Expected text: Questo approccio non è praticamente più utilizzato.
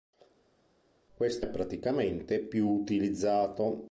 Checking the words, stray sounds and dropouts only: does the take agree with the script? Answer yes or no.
no